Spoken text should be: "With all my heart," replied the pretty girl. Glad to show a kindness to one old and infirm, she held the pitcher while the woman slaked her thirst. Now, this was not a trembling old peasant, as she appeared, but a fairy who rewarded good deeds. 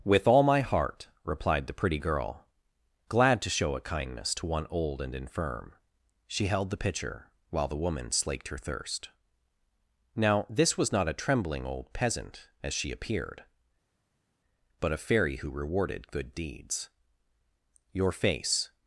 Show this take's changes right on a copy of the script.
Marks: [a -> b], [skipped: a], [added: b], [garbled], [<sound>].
"With all my heart," replied the pretty girl. Glad to show a kindness to one old and infirm, she held the pitcher while the woman slaked her thirst. Now, this was not a trembling old peasant, as she appeared, but a fairy who rewarded good deeds. [added: Your face]